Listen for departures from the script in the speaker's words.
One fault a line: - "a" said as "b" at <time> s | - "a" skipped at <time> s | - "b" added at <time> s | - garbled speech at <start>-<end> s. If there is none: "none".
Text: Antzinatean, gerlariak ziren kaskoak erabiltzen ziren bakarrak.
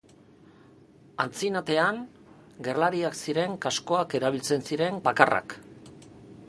none